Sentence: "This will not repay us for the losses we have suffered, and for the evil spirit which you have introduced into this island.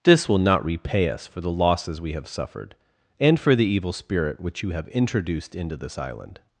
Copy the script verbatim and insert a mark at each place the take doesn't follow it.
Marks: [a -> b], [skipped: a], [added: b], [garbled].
"This will not repay us for the losses we have suffered, and for the evil spirit which you have introduced into this island.